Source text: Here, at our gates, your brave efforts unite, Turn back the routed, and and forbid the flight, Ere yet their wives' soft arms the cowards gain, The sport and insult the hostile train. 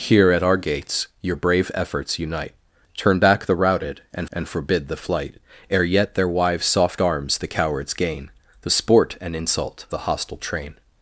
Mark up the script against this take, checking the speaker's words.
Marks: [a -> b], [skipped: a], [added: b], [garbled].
Here, at our gates, your brave efforts unite, Turn back the routed, and and forbid the flight, Ere yet their wives' soft arms the cowards gain, The sport and insult the hostile train.